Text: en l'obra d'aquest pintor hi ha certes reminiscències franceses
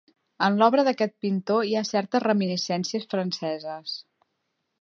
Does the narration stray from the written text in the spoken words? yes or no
no